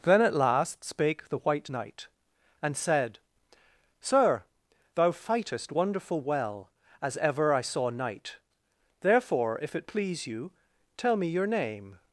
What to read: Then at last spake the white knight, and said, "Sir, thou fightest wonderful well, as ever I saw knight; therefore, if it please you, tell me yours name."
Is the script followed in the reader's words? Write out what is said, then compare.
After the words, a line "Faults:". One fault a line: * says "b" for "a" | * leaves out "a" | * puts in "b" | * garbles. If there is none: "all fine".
Then at last spake the white knight, and said, "Sir, thou fightest wonderful well, as ever I saw knight; therefore, if it please you, tell me your name."
Faults:
* says "your" for "yours"